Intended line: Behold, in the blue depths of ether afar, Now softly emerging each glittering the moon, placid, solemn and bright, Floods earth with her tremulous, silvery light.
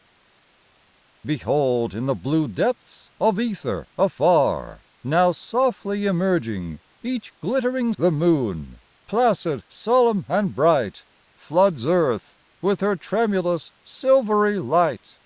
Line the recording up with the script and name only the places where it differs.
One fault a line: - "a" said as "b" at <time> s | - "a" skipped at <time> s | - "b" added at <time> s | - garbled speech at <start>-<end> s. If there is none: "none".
none